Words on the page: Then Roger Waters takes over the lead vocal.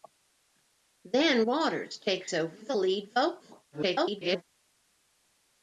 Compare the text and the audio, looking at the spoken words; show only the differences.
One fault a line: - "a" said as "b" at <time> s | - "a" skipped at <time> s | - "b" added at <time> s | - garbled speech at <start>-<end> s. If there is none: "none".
- "Roger" skipped at 1.4 s
- garbled speech at 3.7-4.4 s